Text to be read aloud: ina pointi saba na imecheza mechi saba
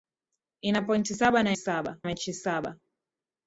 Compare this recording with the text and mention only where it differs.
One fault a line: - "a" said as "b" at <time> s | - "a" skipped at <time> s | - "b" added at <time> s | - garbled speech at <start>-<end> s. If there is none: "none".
- "imecheza" said as "saba" at 1.6 s